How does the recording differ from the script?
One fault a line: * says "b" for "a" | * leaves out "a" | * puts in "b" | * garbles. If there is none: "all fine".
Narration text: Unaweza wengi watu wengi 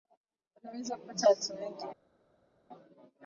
* says "kupata" for "wengi"